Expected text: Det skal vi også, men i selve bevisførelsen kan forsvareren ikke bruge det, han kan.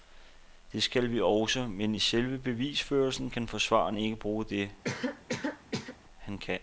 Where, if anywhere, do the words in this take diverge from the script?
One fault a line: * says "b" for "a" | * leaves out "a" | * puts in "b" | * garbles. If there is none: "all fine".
all fine